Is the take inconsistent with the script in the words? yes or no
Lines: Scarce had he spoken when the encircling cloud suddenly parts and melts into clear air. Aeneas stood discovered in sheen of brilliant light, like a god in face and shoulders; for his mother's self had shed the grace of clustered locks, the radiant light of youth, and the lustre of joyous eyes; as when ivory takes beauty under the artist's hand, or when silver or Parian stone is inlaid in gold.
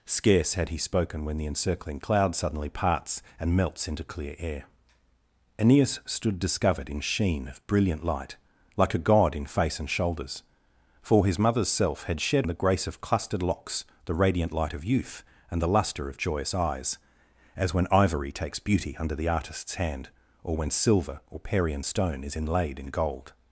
no